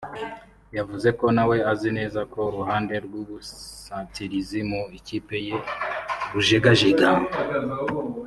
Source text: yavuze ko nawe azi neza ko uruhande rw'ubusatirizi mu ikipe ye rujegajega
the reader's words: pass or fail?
pass